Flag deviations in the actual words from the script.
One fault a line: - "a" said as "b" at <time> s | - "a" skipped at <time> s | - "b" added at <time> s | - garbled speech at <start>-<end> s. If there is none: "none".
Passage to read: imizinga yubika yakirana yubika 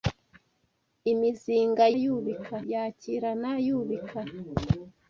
none